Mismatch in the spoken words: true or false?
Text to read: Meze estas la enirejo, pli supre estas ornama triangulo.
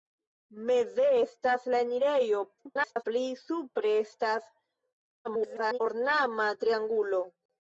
true